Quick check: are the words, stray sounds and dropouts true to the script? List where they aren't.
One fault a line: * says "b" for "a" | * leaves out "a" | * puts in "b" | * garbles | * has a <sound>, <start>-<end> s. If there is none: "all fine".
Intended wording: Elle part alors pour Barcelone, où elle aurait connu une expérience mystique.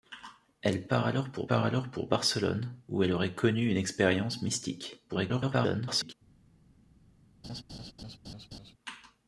* puts in "part alors pour"
* garbles
* has a laugh, 7.4-8.7 s